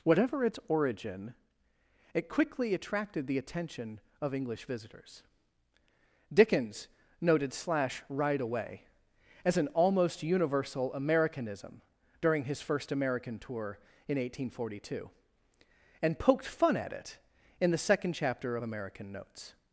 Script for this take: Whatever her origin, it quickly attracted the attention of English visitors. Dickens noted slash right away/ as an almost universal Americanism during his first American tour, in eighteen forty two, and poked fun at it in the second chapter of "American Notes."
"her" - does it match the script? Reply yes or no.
no